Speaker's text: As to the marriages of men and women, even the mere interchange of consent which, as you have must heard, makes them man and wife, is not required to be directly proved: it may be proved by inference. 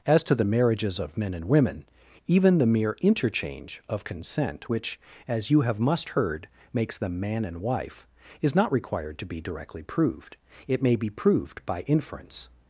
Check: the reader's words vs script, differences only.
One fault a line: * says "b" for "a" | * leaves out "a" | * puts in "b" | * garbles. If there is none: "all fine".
all fine